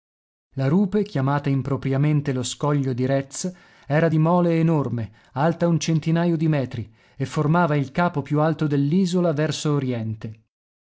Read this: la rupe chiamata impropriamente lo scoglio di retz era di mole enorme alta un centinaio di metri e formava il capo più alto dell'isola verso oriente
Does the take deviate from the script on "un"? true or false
false